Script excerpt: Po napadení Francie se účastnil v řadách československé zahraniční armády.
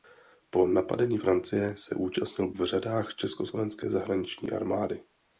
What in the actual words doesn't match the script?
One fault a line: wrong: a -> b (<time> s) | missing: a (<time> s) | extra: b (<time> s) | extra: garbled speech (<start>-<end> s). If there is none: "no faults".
no faults